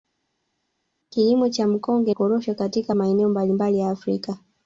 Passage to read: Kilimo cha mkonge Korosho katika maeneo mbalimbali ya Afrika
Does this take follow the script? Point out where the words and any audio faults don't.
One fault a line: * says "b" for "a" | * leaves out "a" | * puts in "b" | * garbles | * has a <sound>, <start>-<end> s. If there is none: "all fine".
all fine